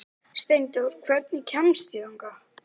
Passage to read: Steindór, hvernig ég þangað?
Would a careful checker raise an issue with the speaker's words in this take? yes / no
yes